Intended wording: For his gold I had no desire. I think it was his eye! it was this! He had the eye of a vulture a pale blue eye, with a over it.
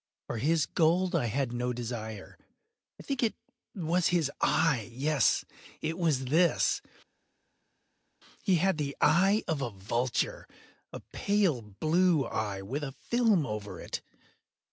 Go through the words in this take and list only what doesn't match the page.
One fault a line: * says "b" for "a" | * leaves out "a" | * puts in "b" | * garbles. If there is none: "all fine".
* puts in "yes"
* puts in "film"